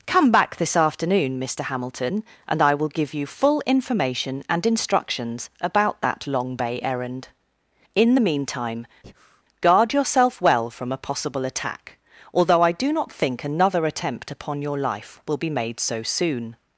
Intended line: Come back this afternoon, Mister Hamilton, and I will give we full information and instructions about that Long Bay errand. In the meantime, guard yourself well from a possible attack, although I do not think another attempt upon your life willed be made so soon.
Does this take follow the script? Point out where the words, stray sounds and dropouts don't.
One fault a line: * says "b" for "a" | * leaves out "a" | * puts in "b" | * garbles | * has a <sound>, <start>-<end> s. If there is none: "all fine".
* says "you" for "we"
* has a breath, 9.0-9.4 s
* says "will" for "willed"